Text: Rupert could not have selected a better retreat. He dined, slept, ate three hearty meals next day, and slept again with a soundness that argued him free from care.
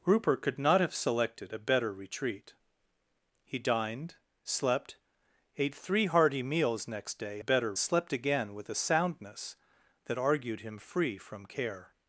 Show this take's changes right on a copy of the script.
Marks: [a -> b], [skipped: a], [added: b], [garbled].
Rupert could not have selected a better retreat. He dined, slept, ate three hearty meals next day, [and -> better] slept again with a soundness that argued him free from care.